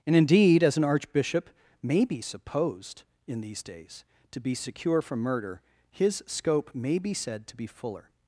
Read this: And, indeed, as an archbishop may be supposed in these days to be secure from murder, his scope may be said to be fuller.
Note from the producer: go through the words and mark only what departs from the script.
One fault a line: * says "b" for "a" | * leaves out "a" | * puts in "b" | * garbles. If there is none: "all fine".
all fine